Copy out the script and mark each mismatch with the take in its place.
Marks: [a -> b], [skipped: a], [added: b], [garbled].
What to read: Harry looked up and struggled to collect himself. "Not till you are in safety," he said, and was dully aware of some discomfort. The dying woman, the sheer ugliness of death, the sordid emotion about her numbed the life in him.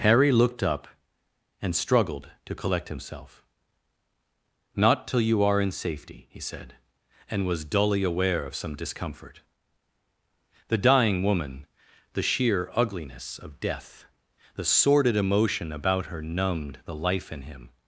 Harry looked up and struggled to collect himself. "Not till you are in safety," he said, and was dully aware of some discomfort. The dying woman, the sheer ugliness of death, the sordid emotion about her numbed the life in him.